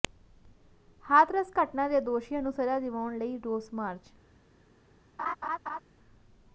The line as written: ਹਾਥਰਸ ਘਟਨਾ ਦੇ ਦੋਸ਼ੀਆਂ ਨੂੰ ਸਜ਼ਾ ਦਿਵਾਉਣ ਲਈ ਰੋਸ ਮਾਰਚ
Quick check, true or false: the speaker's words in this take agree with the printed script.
true